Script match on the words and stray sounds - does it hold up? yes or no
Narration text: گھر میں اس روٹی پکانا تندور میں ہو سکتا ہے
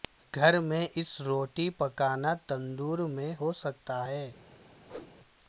no